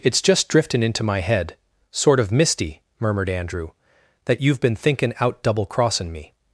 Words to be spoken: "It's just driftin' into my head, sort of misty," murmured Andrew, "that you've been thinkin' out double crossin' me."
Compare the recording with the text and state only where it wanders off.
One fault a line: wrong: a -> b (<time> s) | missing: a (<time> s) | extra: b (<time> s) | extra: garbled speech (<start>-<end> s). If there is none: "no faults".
no faults